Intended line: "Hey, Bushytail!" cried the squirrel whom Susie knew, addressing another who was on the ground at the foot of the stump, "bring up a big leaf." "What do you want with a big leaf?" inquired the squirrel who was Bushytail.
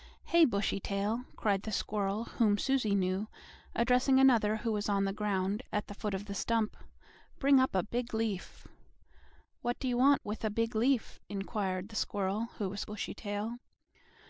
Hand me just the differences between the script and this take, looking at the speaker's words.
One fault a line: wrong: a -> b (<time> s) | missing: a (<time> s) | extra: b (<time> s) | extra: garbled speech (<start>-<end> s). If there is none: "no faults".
no faults